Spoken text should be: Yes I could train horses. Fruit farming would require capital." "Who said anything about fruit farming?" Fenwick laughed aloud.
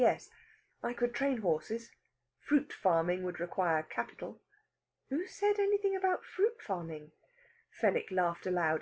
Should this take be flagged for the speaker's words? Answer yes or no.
no